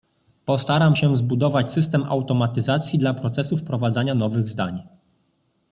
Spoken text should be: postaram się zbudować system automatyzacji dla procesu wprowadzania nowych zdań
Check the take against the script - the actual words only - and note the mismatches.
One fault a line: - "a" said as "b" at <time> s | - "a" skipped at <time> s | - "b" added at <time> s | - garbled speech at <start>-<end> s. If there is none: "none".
none